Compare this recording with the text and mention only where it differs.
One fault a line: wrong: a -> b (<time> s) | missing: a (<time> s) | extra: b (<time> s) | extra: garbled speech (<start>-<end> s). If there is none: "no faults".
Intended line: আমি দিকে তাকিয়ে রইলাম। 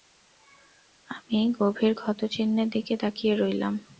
extra: গভীর ক্ষতচিহ্নের (1.6 s)